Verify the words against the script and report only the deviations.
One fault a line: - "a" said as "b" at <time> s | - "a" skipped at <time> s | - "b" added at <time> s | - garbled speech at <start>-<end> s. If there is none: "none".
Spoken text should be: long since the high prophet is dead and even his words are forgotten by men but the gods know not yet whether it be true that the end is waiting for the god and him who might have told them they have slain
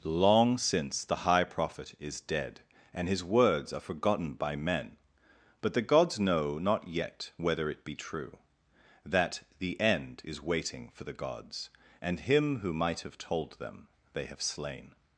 - "even" skipped at 3.1 s
- "god" said as "gods" at 11.1 s